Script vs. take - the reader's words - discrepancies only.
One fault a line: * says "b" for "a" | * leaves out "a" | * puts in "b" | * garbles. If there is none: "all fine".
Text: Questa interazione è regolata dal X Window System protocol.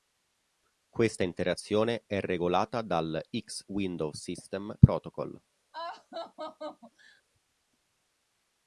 all fine